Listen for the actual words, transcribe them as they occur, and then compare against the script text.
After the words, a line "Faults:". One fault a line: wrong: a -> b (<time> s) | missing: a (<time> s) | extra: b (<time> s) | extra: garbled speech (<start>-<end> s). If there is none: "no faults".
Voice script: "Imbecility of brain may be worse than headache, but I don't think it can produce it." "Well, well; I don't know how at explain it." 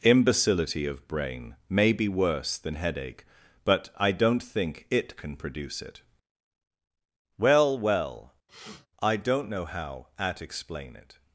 "Imbecility of brain may be worse than headache, but I don't think it can produce it." "Well, well; I don't know how at explain it."
Faults:
no faults